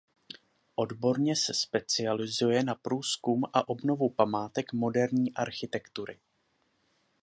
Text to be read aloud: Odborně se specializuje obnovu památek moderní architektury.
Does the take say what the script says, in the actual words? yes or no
no